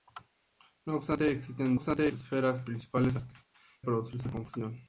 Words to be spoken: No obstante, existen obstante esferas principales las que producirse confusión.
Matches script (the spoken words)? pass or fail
pass